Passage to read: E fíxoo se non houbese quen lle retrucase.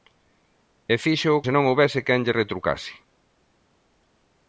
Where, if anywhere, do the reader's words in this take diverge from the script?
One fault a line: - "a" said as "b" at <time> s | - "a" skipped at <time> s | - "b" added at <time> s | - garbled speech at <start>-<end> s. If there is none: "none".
none